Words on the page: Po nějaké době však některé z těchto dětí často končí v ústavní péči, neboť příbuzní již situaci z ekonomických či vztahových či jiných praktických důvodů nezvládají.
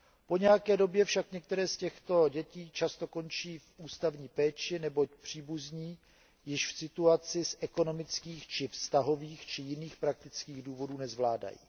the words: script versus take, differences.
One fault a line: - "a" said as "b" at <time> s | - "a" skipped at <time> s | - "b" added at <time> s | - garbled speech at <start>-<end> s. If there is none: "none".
none